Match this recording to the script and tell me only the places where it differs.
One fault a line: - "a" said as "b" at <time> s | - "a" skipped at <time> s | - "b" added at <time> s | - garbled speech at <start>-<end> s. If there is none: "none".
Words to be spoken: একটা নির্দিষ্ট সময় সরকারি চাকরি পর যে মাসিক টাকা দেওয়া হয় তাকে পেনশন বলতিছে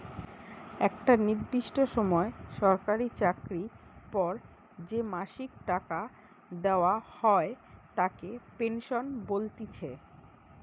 none